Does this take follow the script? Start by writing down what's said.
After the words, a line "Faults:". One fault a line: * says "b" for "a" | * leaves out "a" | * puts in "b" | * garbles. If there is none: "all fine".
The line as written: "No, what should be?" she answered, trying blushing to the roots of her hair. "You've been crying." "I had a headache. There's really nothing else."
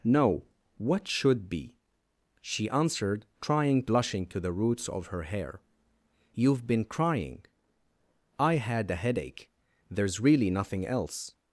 "No, what should be?" she answered, trying blushing to the roots of her hair. "You've been crying." "I had a headache. There's really nothing else."
Faults:
all fine